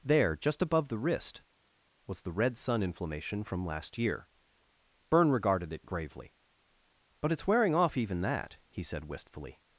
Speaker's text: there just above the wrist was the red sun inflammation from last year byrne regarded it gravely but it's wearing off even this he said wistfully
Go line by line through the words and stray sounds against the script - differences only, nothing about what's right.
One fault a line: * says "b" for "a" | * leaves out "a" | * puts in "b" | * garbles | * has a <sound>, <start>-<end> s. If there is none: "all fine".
* says "that" for "this"